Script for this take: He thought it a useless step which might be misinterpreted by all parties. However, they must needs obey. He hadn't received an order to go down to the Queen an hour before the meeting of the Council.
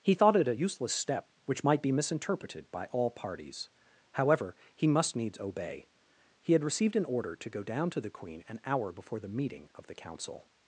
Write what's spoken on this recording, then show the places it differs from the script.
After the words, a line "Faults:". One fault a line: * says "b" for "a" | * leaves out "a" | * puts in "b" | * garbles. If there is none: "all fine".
He thought it a useless step which might be misinterpreted by all parties. However, he must needs obey. He had received an order to go down to the Queen an hour before the meeting of the Council.
Faults:
* says "he" for "they"
* says "had" for "hadn't"